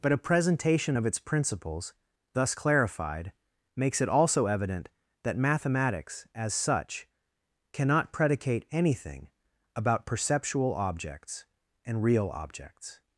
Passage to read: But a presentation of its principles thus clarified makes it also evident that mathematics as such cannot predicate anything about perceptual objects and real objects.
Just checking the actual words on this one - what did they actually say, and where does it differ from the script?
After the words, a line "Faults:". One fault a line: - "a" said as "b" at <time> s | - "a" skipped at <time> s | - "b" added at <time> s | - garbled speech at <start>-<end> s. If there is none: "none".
But a presentation of its principles thus clarified makes it also evident that mathematics as such cannot predicate anything about perceptual objects and real objects.
Faults:
none